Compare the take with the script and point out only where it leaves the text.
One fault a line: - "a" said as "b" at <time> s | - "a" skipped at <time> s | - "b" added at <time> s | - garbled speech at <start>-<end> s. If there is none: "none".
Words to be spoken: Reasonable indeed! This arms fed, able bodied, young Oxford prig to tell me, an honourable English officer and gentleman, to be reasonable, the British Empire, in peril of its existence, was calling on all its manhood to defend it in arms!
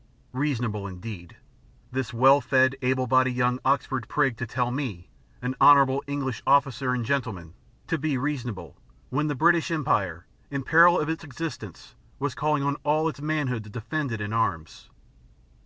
- "arms" said as "well" at 2.1 s
- "when" added at 9.1 s